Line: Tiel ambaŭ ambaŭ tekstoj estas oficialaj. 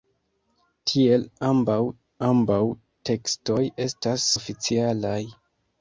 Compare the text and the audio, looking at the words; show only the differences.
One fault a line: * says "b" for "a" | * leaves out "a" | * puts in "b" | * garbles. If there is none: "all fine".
all fine